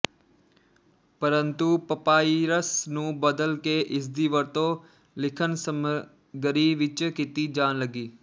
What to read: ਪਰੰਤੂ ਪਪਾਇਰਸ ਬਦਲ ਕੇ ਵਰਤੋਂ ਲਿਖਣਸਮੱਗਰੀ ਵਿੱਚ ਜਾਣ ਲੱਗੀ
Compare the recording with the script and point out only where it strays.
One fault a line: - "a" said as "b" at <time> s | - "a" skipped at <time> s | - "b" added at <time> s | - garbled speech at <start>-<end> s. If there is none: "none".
- "ਨੂੰ" added at 2.9 s
- "ਇਸਦੀ" added at 3.8 s
- "ਕੀਤੀ" added at 7.1 s